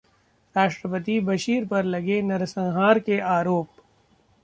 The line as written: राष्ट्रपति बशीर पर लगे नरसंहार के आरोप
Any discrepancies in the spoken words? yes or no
no